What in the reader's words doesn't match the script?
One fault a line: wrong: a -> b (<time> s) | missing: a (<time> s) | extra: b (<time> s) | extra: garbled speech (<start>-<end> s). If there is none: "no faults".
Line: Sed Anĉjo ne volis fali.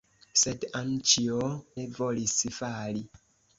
no faults